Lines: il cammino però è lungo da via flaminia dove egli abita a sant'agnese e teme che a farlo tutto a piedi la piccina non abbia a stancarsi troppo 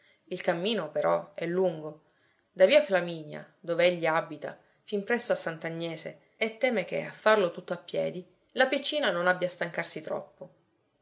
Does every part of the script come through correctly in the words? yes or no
no